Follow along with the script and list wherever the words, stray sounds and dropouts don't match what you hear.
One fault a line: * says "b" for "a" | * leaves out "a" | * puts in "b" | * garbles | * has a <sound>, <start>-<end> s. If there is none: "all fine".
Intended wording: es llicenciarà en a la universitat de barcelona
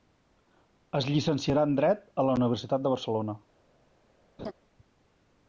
* puts in "dret"
* has a laugh, 4.4-4.5 s